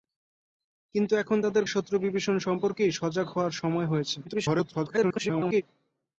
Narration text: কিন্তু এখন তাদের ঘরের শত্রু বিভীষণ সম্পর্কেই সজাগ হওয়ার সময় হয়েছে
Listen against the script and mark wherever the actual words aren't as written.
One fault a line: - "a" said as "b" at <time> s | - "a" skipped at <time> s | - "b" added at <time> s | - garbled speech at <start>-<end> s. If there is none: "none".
- "ঘরের" skipped at 1.6 s
- garbled speech at 4.2-5.6 s